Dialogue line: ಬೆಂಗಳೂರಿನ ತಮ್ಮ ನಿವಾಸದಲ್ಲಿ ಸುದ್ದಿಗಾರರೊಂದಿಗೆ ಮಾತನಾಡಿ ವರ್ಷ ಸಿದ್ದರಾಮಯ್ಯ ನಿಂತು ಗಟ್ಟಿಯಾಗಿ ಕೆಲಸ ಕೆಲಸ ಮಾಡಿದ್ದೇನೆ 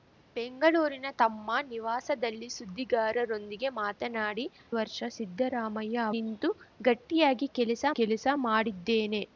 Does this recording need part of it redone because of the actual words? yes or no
no